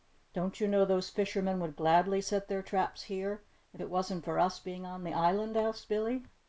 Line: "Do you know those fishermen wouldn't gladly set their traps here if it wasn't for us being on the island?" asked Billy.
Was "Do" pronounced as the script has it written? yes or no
no